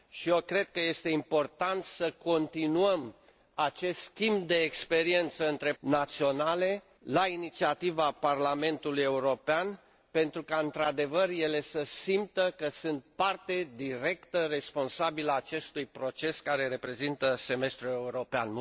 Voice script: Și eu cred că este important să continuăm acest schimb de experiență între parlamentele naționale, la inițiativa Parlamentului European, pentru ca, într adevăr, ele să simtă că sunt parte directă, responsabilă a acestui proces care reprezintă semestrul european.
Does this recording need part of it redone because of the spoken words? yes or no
yes